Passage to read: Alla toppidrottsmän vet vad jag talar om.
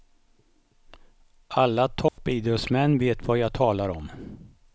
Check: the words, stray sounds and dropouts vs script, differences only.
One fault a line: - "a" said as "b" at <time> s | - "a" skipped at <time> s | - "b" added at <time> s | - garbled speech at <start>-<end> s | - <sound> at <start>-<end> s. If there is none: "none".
- dropout at 2.1-2.2 s